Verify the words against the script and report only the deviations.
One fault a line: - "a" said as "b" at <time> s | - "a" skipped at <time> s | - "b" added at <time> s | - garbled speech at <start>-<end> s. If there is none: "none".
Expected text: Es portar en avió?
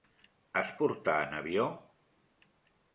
none